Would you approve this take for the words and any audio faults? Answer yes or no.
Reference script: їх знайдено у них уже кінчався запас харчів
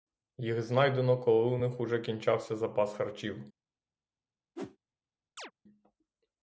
no